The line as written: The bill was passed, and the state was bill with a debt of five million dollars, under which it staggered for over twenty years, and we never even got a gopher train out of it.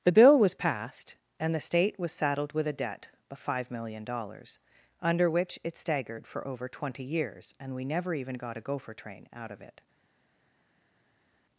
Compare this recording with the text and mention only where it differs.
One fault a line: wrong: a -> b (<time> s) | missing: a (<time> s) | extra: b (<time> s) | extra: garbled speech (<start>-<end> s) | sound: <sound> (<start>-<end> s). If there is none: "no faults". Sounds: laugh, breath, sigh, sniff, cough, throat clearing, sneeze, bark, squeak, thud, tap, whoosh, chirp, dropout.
wrong: bill -> saddled (2.1 s)